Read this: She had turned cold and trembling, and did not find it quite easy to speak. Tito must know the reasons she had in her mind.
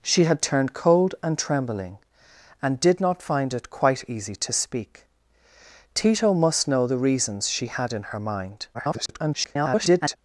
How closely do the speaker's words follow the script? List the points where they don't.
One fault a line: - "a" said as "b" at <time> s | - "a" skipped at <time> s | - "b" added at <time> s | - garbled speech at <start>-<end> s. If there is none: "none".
- garbled speech at 8.7-10.2 s